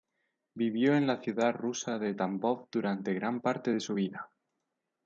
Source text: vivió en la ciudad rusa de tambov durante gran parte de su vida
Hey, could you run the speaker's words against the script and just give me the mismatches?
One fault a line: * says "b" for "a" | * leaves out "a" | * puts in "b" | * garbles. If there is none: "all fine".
all fine